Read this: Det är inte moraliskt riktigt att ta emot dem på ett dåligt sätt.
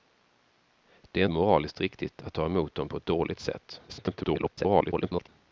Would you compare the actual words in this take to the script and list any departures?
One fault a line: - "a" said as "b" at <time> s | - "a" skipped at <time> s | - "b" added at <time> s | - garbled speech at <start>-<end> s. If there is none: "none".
- "inte" skipped at 1.2 s
- garbled speech at 3.9-5.3 s